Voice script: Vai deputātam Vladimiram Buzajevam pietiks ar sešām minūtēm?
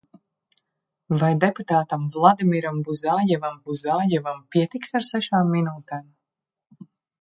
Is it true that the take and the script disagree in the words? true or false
true